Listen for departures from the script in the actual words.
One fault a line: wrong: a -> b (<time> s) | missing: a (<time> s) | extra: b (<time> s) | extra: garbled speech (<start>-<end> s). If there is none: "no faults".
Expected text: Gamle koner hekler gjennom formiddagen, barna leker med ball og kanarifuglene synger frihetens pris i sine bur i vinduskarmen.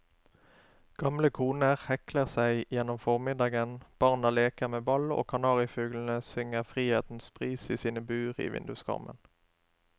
extra: seg (2.4 s)